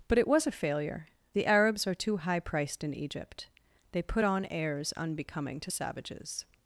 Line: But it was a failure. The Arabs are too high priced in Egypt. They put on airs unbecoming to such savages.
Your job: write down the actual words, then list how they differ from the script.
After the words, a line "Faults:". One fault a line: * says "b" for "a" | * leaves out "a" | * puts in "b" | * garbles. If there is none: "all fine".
But it was a failure. The Arabs are too high priced in Egypt. They put on airs unbecoming to savages.
Faults:
* leaves out "such"